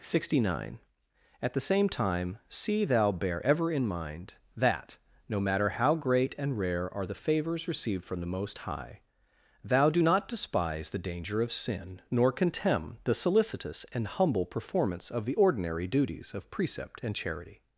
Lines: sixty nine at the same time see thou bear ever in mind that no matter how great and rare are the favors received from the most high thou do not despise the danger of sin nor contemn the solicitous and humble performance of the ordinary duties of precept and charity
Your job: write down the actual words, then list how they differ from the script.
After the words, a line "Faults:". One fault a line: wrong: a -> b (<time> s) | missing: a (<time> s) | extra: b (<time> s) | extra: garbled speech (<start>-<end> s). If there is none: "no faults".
sixty nine at the same time see thou bear ever in mind that no matter how great and rare are the favors received from the most high thou do not despise the danger of sin nor contemn the solicitous and humble performance of the ordinary duties of precept and charity
Faults:
no faults